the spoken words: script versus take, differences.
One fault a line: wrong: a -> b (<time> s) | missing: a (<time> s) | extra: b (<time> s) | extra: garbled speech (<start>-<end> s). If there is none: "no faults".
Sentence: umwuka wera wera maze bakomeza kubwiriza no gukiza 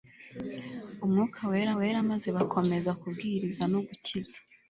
no faults